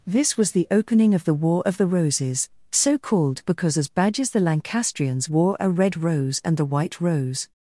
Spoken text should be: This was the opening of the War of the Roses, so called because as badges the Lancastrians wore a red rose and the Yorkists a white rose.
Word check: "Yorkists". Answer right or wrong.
wrong